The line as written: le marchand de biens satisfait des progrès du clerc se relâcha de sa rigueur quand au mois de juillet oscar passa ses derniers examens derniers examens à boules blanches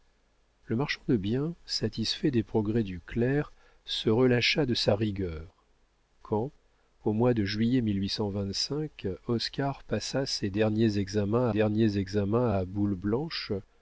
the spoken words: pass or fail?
pass